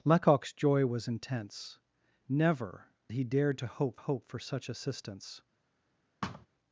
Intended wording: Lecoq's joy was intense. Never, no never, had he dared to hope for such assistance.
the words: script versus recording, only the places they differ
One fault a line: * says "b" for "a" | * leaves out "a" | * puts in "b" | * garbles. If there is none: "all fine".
* leaves out "no never had"
* puts in "hope"